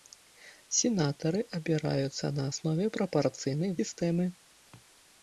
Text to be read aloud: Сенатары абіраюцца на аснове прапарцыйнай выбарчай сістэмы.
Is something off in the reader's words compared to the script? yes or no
yes